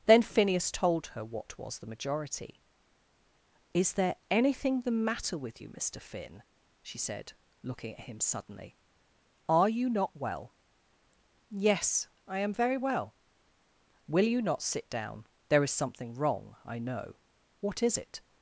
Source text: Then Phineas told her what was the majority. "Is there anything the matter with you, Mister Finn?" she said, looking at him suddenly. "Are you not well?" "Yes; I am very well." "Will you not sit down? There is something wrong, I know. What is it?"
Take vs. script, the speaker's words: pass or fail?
pass